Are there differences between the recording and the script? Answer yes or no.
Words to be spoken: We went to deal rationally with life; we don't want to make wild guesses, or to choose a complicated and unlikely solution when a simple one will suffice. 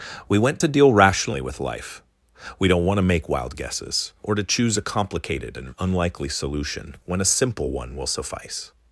no